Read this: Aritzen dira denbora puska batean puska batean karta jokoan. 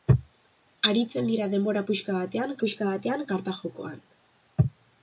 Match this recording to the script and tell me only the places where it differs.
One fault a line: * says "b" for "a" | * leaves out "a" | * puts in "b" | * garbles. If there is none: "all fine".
all fine